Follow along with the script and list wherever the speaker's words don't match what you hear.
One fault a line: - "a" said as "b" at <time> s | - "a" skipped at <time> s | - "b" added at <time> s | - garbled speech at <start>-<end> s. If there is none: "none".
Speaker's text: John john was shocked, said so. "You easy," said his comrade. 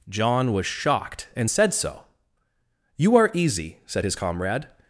- "john" skipped at 0.5 s
- "and" added at 1.4 s
- "are" added at 3.2 s